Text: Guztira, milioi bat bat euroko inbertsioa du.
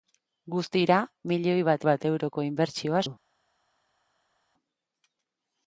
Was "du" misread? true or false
false